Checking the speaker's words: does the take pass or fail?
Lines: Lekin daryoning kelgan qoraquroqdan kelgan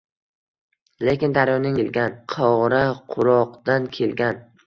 pass